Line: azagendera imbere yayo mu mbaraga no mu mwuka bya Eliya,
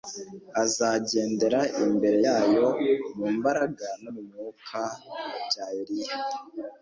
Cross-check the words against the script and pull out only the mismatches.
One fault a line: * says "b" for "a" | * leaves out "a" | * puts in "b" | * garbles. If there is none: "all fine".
all fine